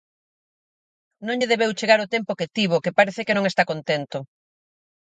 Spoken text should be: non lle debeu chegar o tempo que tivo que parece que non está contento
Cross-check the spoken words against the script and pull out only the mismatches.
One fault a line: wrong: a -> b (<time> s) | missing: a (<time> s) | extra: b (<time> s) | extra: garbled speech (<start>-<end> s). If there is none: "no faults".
no faults